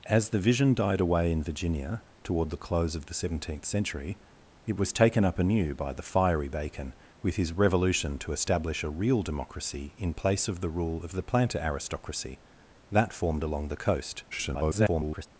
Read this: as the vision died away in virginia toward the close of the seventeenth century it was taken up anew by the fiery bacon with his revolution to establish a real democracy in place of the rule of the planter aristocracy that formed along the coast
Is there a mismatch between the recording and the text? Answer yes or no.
yes